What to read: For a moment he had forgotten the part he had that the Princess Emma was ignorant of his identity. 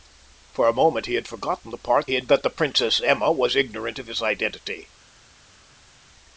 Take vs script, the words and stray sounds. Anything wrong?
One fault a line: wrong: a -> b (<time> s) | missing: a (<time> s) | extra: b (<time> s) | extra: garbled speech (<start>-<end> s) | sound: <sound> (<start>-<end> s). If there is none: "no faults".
no faults